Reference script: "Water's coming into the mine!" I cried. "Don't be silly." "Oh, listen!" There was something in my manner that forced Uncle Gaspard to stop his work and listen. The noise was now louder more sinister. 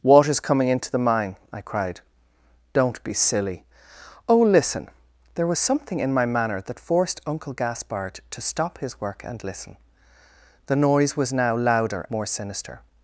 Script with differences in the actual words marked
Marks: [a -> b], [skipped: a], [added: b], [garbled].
"Water's coming into the mine!" I cried. "Don't be silly." "Oh, listen!" There was something in my manner that forced Uncle Gaspard to stop his work and listen. The noise was now louder more sinister.